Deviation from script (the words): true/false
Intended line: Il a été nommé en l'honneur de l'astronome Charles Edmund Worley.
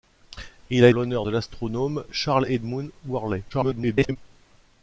true